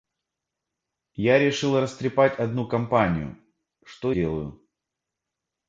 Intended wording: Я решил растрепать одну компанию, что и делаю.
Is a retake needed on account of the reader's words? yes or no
yes